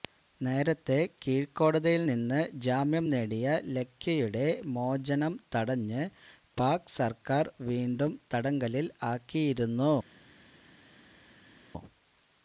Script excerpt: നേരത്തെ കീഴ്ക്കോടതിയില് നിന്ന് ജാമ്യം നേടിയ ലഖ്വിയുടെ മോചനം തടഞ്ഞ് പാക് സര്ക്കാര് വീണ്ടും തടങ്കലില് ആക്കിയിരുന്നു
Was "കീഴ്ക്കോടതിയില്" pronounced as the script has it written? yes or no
yes